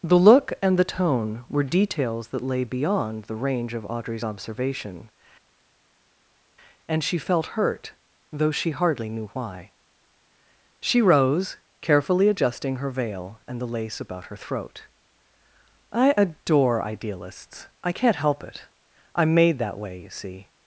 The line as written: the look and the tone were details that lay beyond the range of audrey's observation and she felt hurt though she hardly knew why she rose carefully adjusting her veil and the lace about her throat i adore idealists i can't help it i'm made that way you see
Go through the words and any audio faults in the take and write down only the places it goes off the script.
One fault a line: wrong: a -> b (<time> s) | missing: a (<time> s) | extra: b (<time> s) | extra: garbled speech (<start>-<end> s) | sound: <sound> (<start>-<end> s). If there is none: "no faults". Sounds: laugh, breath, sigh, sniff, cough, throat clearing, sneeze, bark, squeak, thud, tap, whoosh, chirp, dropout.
no faults